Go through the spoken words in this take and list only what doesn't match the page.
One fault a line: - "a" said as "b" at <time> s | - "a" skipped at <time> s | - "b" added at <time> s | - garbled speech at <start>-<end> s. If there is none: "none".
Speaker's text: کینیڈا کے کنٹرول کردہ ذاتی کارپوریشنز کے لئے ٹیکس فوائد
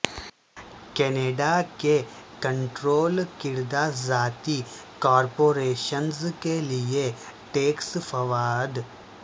none